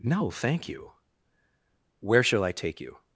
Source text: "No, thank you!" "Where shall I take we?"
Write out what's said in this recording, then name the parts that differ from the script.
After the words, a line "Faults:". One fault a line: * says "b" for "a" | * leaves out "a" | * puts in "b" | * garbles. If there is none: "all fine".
"No, thank you!" "Where shall I take you?"
Faults:
* says "you" for "we"